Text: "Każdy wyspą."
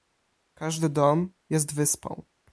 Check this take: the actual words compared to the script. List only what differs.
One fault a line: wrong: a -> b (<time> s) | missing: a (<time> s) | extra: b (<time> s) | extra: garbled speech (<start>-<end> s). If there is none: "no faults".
extra: dom jest (0.9 s)